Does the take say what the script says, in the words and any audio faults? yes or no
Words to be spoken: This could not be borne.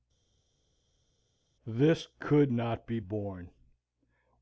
yes